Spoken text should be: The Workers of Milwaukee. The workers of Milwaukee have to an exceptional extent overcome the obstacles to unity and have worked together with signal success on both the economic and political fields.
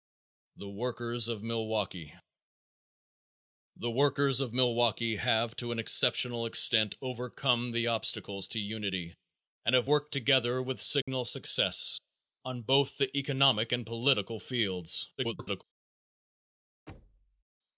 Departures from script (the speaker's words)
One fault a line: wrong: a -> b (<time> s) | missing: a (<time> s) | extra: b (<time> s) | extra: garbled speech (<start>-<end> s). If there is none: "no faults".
extra: garbled speech (15.2-15.6 s)